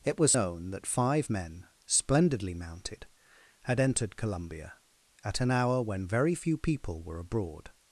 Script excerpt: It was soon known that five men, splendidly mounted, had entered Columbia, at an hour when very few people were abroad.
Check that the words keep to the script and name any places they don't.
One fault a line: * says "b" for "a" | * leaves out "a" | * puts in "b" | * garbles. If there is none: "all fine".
* leaves out "soon"